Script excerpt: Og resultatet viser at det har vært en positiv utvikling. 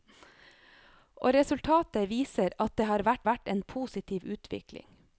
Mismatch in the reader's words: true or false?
true